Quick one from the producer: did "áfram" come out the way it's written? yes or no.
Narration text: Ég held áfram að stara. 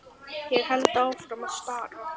yes